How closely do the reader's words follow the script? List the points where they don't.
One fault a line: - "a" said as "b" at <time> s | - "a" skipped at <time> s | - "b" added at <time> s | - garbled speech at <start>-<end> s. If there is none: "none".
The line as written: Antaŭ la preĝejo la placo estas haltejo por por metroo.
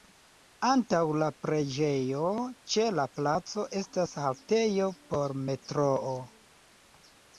- "ĉe" added at 2.8 s
- "por" skipped at 5.4 s